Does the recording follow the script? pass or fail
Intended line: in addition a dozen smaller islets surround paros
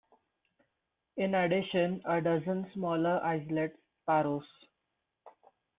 fail